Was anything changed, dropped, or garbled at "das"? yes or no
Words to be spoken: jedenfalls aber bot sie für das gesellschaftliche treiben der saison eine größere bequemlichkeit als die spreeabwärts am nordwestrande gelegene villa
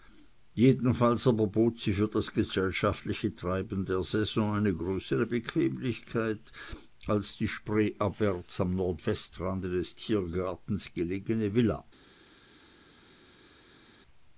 no